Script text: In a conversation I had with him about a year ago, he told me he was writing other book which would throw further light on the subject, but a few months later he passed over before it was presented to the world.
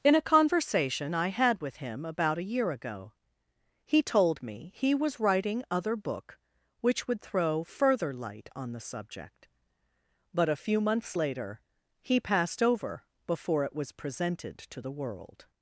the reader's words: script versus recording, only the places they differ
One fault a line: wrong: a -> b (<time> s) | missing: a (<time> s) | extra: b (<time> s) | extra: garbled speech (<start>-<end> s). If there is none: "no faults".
no faults